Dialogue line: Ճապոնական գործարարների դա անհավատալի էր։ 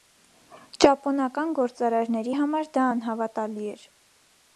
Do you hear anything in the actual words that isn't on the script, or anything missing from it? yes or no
yes